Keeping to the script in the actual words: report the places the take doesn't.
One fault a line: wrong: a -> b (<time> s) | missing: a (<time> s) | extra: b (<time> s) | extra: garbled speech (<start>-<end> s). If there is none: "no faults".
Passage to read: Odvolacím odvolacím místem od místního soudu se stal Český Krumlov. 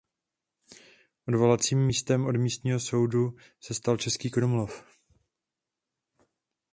missing: odvolacím (1.9 s)